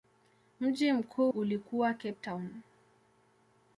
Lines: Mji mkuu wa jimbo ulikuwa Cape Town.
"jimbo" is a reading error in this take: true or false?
true